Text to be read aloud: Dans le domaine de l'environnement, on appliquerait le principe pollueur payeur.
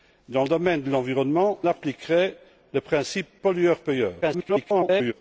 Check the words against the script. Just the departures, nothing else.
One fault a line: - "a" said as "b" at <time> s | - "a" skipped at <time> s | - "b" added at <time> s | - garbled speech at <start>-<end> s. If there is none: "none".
- "on" skipped at 1.6 s
- garbled speech at 4.2-5.1 s